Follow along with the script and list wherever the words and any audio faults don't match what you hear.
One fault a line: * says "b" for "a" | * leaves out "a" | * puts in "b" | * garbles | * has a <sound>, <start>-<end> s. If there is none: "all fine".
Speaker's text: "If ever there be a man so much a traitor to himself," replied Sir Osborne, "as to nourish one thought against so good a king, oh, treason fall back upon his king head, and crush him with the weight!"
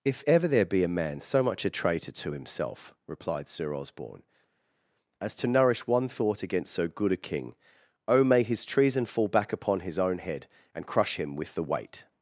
* puts in "may his"
* says "own" for "king"